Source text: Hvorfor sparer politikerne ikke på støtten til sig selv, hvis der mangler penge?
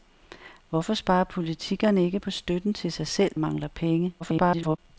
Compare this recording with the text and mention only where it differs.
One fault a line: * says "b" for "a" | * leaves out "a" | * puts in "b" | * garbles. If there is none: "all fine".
* leaves out "hvis der"
* garbles